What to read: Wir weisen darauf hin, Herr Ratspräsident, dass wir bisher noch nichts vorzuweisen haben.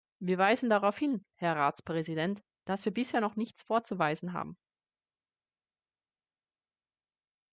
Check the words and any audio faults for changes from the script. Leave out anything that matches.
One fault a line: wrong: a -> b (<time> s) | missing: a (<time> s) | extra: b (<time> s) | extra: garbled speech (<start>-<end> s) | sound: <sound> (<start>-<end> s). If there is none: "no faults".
no faults